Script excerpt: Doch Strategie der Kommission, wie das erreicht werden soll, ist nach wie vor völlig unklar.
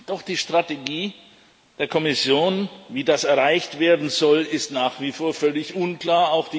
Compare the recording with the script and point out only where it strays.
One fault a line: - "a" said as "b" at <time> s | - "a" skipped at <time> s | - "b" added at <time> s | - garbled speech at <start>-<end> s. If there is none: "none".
- "die" added at 0.2 s